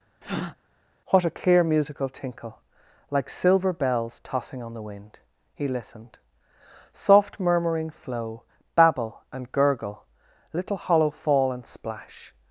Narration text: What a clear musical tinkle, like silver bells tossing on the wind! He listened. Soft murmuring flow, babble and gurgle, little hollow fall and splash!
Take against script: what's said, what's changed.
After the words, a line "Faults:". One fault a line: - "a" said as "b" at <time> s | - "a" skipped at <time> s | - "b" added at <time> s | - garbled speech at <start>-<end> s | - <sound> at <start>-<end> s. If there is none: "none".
What a clear musical tinkle, like silver bells tossing on the wind! He listened. Soft murmuring flow, babble and gurgle, little hollow fall and splash!
Faults:
- breath at 0.2-0.6 s